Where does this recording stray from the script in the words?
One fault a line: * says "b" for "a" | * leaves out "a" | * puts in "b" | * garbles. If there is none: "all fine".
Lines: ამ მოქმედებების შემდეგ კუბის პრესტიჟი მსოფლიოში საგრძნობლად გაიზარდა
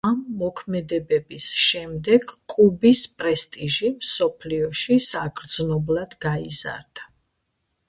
all fine